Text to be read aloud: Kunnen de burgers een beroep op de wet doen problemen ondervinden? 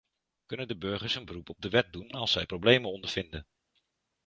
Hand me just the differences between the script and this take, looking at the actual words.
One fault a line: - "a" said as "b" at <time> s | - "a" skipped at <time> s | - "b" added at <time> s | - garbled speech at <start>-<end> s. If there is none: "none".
- "als zij" added at 2.1 s